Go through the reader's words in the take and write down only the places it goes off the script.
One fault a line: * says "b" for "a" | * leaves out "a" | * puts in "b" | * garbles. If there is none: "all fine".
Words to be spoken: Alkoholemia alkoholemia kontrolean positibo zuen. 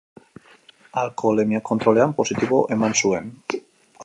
* leaves out "alkoholemia"
* puts in "eman"